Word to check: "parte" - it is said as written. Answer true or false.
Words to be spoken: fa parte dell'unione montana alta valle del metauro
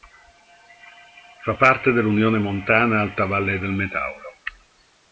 true